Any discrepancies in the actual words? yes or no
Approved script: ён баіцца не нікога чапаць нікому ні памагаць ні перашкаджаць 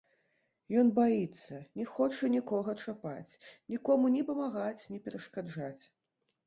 yes